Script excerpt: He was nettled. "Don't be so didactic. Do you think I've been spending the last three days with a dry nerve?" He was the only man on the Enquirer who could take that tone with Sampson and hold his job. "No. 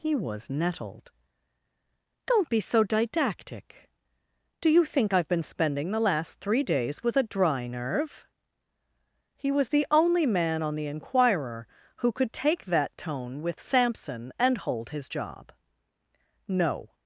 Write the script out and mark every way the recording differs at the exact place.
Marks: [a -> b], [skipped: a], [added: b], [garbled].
He was nettled. "Don't be so didactic. Do you think I've been spending the last three days with a dry nerve?" He was the only man on the Enquirer who could take that tone with Sampson and hold his job. "No.